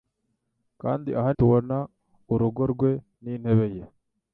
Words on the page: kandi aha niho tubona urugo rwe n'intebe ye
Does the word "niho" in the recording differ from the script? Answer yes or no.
yes